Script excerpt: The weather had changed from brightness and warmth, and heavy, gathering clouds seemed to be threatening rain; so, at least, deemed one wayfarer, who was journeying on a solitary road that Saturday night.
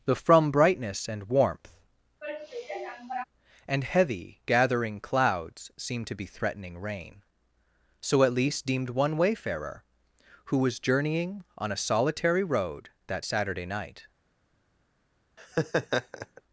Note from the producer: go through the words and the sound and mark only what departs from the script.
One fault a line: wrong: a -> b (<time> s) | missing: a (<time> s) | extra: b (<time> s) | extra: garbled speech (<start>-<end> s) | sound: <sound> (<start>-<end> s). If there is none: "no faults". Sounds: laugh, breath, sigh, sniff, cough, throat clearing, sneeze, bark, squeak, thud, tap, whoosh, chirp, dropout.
missing: weather had changed (0.1 s)
sound: sigh (2.2-3.2 s)
sound: laugh (15.4-16.4 s)